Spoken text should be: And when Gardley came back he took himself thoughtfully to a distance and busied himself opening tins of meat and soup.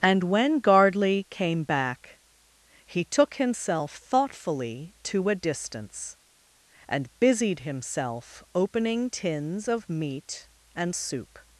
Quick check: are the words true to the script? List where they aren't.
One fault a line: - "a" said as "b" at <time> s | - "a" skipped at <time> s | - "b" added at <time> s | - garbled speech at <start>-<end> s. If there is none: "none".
none